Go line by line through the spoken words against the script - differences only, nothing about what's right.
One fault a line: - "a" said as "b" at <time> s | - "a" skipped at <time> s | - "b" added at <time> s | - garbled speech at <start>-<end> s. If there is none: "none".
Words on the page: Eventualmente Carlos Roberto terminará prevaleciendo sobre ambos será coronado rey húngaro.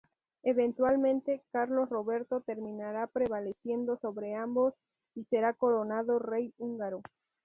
- "y" added at 5.1 s